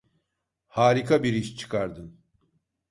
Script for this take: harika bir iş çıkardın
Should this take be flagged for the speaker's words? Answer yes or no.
no